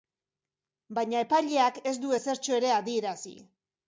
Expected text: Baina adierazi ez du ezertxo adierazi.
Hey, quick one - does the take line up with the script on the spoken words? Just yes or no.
no